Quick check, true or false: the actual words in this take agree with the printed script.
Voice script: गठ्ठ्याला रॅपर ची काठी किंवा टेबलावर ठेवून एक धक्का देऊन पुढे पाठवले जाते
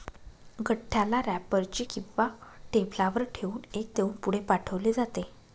false